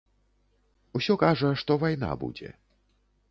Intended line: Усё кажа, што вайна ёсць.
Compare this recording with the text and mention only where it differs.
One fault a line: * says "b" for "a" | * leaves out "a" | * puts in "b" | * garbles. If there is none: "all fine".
* says "будзе" for "ёсць"